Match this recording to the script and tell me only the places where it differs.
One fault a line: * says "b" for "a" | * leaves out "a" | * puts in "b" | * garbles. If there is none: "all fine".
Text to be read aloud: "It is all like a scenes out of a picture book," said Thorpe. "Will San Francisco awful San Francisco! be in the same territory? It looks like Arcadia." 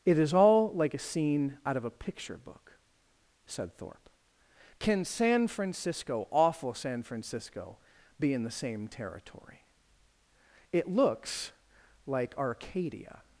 * says "scene" for "scenes"
* says "Can" for "Will"